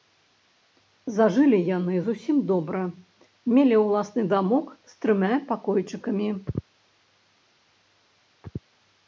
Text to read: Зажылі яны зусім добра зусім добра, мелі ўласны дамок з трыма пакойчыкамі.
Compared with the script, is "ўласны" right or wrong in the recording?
right